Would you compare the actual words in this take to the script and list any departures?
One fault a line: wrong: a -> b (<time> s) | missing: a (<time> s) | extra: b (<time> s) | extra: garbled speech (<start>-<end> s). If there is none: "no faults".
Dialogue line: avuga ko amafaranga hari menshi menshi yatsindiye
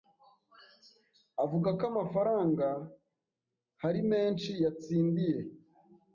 missing: menshi (4.5 s)